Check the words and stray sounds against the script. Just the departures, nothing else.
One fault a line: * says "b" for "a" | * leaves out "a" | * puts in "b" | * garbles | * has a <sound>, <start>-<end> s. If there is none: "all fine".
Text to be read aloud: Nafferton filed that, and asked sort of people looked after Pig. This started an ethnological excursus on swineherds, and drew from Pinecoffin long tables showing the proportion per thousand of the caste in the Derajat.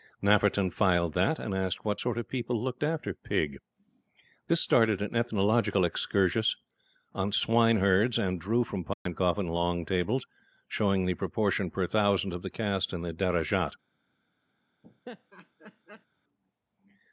* puts in "what"
* has a dropout, 8.9-9.1 s
* has a laugh, 14.8-16.1 s